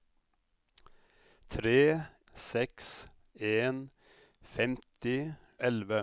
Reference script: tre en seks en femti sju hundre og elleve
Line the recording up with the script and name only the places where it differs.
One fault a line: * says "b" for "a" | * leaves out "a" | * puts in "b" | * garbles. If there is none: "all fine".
* leaves out "en"
* leaves out "sju hundre og"